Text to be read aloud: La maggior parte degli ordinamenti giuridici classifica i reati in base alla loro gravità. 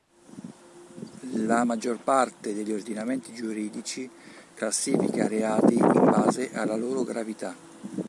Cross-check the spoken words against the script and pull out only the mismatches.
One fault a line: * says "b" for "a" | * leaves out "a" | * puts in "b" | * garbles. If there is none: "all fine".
all fine